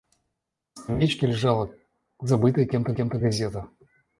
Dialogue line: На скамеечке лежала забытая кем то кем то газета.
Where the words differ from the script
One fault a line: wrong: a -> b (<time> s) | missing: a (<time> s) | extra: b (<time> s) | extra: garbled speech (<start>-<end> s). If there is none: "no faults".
no faults